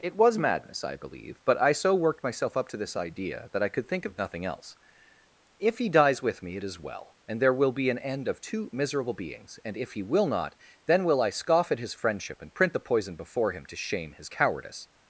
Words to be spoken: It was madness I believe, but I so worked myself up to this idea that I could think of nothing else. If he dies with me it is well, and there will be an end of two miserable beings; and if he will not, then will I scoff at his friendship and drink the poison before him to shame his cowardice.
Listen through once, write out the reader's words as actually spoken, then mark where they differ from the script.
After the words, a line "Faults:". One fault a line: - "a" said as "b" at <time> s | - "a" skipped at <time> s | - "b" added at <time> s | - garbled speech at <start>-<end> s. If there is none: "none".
It was madness I believe, but I so worked myself up to this idea that I could think of nothing else. If he dies with me it is well, and there will be an end of two miserable beings; and if he will not, then will I scoff at his friendship and print the poison before him to shame his cowardice.
Faults:
- "drink" said as "print" at 12.5 s